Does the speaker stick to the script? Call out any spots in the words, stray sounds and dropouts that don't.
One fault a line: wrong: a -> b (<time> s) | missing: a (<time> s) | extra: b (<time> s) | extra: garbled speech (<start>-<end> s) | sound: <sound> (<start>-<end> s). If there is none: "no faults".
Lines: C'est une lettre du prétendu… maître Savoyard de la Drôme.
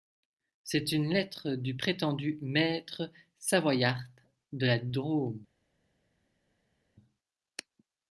no faults